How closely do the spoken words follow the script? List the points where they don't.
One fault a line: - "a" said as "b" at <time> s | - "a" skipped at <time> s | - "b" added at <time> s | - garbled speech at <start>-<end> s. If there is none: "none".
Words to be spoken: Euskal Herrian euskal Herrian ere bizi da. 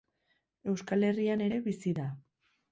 - "euskal Herrian" skipped at 1.4 s